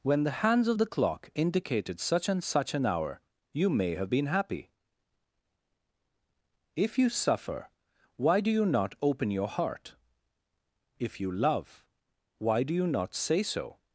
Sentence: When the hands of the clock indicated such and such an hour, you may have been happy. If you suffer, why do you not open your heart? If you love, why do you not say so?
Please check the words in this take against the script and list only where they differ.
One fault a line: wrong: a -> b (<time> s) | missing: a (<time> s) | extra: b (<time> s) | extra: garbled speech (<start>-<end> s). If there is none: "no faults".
no faults